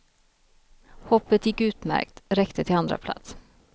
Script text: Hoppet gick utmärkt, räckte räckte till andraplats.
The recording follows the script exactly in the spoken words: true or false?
false